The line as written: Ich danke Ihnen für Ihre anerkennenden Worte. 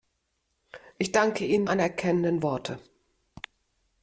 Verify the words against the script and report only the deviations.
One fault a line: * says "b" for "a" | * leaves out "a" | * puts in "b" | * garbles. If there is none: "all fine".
* leaves out "für Ihre"